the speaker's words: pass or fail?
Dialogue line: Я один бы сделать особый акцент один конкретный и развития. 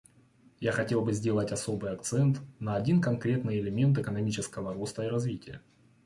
fail